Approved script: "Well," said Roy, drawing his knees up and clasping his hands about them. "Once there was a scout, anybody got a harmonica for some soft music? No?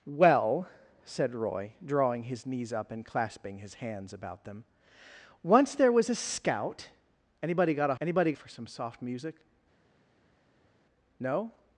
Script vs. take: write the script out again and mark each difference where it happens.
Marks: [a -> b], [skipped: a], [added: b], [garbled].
"Well," said Roy, drawing his knees up and clasping his hands about them. "Once there was a scout, anybody got a [harmonica -> anybody] for some soft music? No?